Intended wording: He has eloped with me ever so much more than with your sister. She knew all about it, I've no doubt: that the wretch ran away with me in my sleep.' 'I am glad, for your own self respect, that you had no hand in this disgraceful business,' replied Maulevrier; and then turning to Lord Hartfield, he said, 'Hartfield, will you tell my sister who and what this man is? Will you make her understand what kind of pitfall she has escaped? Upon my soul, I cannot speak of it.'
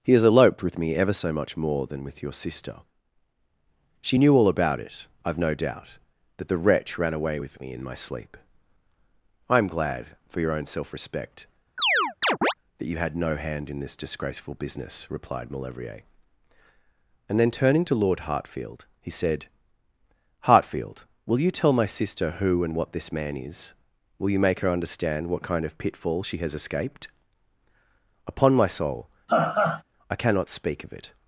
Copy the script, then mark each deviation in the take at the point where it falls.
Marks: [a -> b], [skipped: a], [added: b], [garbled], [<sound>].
He has eloped with me ever so much more than with your sister. She knew all about it, I've no doubt: that the wretch ran away with me in my sleep.' 'I am glad, for your own self respect, [chirp] that you had no hand in this disgraceful business,' replied Maulevrier; and then turning to Lord Hartfield, he said, 'Hartfield, will you tell my sister who and what this man is? Will you make her understand what kind of pitfall she has escaped? Upon my soul, [laugh] I cannot speak of it.'